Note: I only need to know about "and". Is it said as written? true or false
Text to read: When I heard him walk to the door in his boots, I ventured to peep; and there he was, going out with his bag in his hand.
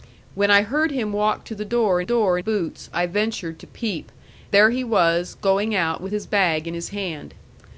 false